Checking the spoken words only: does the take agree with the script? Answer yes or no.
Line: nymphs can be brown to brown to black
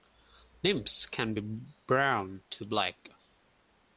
no